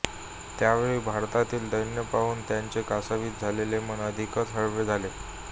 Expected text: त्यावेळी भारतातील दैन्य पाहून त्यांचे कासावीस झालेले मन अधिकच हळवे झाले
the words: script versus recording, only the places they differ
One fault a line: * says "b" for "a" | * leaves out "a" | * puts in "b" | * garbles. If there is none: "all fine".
all fine